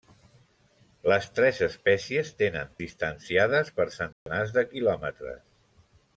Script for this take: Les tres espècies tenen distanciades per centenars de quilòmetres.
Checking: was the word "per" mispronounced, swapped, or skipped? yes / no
no